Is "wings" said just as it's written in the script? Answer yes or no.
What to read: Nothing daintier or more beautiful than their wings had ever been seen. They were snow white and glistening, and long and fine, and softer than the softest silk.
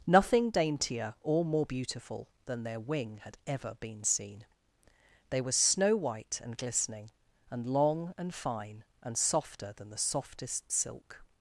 no